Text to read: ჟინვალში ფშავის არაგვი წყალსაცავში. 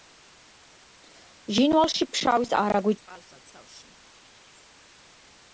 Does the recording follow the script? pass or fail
pass